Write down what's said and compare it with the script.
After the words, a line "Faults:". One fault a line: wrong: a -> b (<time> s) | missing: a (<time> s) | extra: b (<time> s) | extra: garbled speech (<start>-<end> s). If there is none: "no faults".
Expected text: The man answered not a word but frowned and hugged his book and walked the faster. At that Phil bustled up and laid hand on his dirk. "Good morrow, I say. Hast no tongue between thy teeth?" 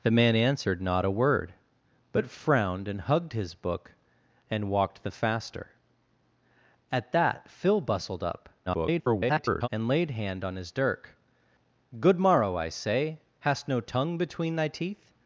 The man answered not a word but frowned and hugged his book and walked the faster. At that Phil bustled up [garbled] and laid hand on his dirk. "Good morrow, I say. Hast no tongue between thy teeth?"
Faults:
extra: garbled speech (8.7-9.7 s)